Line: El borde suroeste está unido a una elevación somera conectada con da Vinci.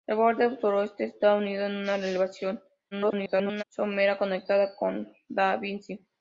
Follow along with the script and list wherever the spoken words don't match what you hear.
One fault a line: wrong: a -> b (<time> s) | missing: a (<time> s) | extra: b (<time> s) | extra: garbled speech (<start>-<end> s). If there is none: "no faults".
extra: garbled speech (2.9-3.6 s)